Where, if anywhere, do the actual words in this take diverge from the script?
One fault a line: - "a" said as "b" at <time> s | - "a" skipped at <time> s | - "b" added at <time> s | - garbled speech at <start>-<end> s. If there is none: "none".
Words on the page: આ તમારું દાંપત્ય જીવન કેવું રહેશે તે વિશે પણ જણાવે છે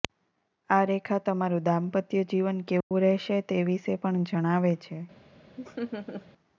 - "રેખા" added at 0.9 s